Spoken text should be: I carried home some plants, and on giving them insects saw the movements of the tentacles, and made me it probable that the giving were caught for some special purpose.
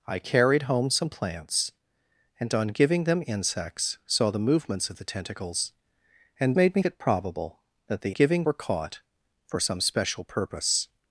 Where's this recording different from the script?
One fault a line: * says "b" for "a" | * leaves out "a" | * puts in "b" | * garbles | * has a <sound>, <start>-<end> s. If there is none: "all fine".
all fine